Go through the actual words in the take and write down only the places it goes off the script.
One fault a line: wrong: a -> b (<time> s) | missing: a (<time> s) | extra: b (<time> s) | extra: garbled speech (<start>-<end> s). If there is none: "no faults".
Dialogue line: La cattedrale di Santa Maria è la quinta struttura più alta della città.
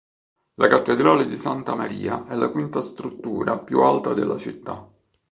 no faults